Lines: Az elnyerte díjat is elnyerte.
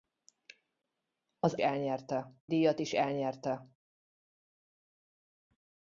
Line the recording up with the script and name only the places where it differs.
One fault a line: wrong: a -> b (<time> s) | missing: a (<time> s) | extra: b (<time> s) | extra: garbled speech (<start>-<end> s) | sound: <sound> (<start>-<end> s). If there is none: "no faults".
no faults